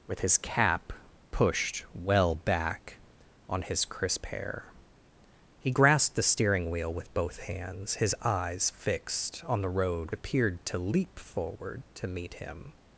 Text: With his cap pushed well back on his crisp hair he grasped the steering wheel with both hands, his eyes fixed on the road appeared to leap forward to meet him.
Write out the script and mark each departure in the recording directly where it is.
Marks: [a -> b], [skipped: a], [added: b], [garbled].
With his cap pushed well back on his crisp hair he grasped the steering wheel with both hands, his eyes fixed on the road appeared to leap forward to meet him.